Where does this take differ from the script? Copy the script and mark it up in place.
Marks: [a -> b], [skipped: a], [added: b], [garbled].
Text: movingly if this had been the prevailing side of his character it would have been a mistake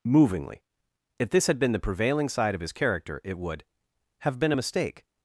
movingly if this had been the prevailing side of his character it would have been a mistake